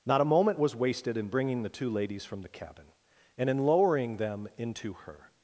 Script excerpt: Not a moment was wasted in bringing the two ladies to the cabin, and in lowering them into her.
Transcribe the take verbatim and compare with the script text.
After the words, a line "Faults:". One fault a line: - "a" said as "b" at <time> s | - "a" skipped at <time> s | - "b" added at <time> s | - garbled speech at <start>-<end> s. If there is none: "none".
Not a moment was wasted in bringing the two ladies from the cabin, and in lowering them into her.
Faults:
- "to" said as "from" at 2.2 s